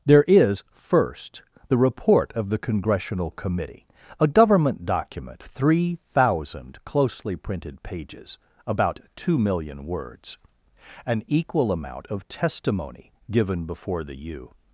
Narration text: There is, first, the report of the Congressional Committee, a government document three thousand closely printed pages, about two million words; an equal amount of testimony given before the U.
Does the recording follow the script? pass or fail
pass